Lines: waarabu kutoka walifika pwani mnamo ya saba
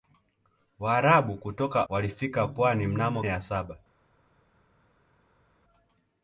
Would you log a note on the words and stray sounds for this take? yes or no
no